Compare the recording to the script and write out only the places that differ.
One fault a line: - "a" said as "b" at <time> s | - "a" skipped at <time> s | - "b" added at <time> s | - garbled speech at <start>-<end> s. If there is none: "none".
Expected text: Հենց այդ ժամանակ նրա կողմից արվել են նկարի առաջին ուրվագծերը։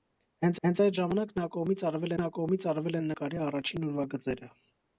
- "հենց" added at 0.7 s
- "նրա կողմից արվել" added at 2.2 s